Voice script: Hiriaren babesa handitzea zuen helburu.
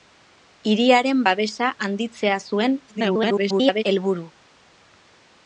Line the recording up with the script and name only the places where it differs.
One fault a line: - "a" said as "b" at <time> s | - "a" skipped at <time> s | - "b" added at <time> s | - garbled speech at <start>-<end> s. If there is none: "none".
- garbled speech at 2.9-3.8 s